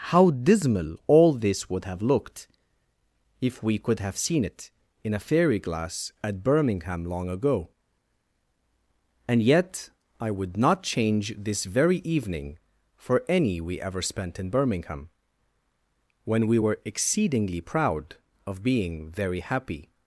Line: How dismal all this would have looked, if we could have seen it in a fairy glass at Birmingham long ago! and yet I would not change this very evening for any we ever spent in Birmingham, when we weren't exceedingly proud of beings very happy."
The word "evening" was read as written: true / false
true